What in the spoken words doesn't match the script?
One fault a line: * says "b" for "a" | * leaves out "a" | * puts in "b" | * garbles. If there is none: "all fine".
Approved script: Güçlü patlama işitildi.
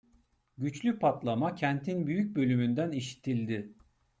* puts in "kentin büyük bölümünden"